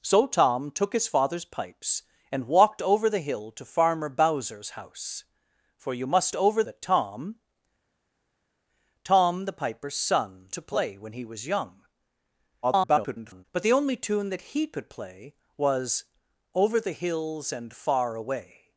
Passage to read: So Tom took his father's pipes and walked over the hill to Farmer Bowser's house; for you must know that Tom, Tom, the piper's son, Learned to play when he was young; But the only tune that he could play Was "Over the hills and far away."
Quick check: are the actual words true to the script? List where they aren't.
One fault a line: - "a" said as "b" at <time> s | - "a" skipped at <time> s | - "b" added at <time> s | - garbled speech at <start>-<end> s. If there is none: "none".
- "know" said as "over" at 6.3 s
- "Learned" skipped at 10.5 s
- garbled speech at 12.6-13.4 s